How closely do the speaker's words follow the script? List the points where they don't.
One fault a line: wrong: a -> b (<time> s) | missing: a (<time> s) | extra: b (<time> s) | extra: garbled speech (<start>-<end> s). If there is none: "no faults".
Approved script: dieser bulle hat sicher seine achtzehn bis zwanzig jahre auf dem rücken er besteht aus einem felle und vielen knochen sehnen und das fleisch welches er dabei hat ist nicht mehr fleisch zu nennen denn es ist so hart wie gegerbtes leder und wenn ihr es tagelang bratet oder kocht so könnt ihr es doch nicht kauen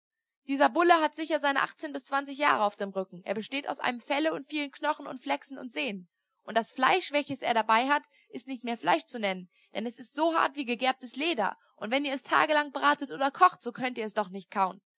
extra: und flechsen und (5.0 s)